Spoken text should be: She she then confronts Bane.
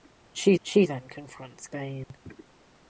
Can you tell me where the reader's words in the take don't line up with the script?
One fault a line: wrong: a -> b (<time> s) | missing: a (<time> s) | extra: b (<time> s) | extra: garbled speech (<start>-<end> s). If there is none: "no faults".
no faults